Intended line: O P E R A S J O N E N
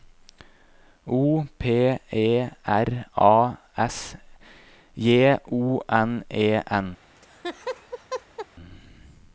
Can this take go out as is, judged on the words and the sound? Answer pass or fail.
fail